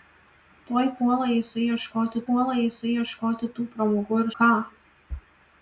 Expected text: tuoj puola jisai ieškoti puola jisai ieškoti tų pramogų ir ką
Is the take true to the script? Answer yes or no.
yes